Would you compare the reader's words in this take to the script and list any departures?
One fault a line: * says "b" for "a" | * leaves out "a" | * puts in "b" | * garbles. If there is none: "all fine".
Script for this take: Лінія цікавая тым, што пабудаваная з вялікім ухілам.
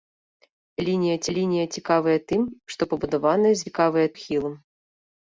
* puts in "лінія"
* says "цікавая" for "вялікім"